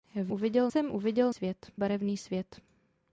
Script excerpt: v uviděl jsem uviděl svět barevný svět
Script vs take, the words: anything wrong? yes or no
no